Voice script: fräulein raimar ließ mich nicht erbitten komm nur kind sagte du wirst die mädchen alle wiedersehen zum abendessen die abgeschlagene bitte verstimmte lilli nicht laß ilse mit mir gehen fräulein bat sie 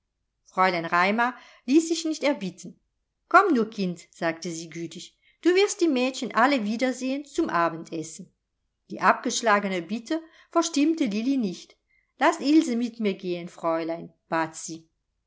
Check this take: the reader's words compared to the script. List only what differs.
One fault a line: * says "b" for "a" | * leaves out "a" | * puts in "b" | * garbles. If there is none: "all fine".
* says "sich" for "mich"
* puts in "sie gütig"